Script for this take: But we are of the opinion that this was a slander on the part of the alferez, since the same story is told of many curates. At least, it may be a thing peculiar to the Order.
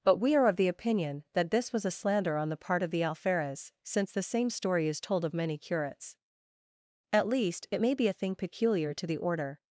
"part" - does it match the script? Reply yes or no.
yes